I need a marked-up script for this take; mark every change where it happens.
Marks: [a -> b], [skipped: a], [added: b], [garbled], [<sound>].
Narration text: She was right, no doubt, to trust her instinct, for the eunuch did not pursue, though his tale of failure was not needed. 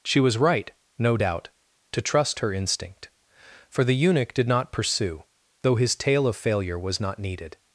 She was right, no doubt, to trust her instinct, for the eunuch did not pursue, though his tale of failure was not needed.